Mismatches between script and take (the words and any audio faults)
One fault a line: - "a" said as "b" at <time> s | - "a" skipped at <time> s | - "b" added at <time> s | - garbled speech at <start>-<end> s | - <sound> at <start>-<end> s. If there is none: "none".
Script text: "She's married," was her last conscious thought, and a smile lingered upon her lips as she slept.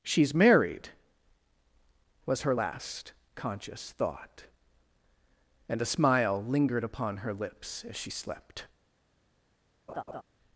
- laugh at 9.9-10.2 s